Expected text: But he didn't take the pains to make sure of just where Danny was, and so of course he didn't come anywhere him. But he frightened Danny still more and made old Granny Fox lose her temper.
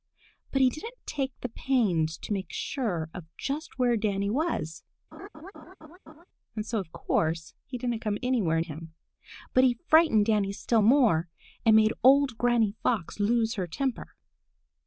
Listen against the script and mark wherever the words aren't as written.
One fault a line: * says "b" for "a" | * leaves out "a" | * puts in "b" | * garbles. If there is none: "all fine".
all fine